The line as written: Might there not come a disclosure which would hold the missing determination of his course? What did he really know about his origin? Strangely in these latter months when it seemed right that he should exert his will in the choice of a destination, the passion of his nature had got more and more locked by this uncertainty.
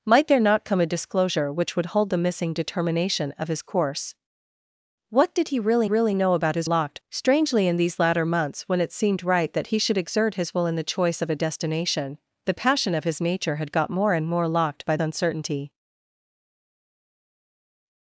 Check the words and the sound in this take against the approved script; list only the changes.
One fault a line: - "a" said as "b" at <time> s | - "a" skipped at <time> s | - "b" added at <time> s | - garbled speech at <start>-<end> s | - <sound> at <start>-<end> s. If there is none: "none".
- "really" added at 5.8 s
- "origin" said as "locked" at 6.6 s
- "this" skipped at 15.0 s